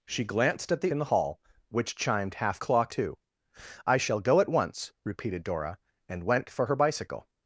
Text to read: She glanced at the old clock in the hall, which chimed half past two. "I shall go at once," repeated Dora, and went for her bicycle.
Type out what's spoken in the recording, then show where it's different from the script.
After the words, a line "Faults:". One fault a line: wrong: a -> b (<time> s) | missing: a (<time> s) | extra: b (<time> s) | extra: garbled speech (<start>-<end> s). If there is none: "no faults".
She glanced at the in the hall, which chimed half clock two. "I shall go at once," repeated Dora, and went for her bicycle.
Faults:
missing: old clock (0.9 s)
wrong: past -> clock (2.6 s)